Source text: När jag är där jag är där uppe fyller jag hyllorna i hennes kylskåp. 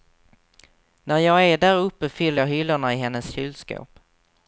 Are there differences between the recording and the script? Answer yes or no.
yes